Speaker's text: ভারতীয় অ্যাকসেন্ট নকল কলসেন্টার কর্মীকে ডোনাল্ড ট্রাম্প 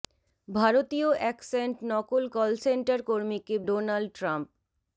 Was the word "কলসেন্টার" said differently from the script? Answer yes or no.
no